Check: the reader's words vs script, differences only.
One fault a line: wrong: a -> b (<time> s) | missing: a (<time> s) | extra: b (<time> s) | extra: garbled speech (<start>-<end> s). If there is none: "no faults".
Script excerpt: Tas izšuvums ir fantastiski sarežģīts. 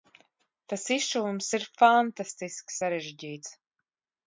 no faults